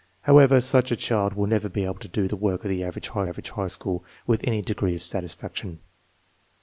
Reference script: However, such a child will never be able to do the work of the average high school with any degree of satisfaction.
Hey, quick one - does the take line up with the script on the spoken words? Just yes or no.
no